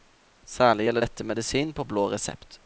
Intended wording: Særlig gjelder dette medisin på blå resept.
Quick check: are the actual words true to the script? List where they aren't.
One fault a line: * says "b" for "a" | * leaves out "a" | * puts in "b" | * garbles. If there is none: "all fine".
all fine